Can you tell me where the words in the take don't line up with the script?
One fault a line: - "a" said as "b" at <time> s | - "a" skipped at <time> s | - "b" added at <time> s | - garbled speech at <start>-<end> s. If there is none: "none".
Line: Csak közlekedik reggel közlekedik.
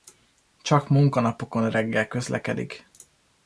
- "közlekedik" said as "munkanapokon" at 0.9 s